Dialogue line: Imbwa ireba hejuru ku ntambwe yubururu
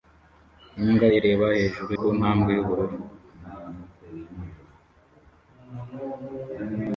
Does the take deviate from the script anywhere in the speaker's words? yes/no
no